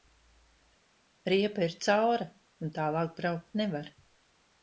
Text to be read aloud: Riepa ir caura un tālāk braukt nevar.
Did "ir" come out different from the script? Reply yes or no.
no